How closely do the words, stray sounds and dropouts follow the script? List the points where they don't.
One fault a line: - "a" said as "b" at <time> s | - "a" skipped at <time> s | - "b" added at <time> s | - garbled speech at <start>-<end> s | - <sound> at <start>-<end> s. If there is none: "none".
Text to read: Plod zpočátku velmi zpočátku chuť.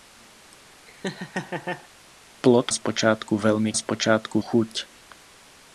- laugh at 0.9-1.9 s